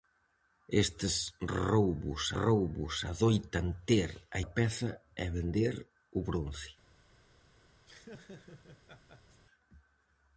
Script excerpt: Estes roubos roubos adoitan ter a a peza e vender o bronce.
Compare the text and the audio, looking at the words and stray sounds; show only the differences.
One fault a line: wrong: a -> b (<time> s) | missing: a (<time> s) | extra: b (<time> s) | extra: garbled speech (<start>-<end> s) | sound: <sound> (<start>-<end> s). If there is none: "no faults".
sound: laugh (7.9-9.4 s)